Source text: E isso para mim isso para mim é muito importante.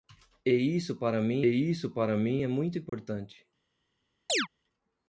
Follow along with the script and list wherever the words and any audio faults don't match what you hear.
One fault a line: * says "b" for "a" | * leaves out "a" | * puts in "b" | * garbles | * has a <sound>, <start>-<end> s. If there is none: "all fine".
* has a dropout, 2.9-2.9 s
* has a chirp, 4.3-4.5 s